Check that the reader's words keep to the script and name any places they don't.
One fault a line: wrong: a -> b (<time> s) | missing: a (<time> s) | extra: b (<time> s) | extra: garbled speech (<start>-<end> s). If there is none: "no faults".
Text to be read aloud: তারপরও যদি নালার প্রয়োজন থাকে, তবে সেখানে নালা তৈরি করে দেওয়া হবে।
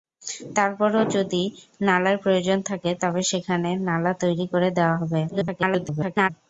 extra: garbled speech (5.3-6.3 s)